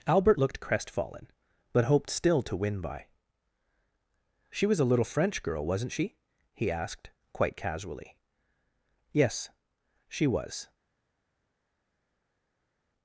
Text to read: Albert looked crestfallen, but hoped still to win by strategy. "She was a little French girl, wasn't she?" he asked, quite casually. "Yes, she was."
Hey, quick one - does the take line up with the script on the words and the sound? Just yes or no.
no